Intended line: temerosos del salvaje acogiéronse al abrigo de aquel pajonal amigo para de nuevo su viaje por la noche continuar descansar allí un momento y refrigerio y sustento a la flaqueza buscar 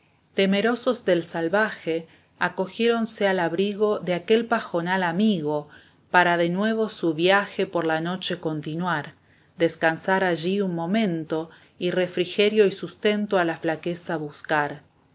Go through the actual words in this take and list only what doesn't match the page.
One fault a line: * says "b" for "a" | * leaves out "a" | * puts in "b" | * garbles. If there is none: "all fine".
all fine